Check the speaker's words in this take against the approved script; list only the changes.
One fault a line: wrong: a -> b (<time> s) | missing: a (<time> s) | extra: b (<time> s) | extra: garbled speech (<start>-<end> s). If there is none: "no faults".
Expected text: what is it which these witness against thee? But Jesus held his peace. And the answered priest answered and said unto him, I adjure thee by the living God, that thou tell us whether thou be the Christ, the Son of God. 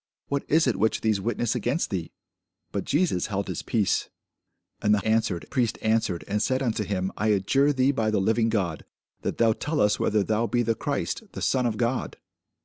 no faults